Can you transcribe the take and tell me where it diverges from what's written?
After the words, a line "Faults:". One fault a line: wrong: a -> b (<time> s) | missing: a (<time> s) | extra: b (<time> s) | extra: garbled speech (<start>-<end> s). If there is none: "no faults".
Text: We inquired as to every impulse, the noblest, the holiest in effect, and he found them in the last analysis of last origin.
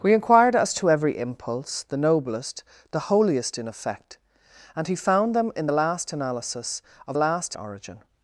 We inquired as to every impulse, the noblest, the holiest in effect, and he found them in the last analysis of last origin.
Faults:
no faults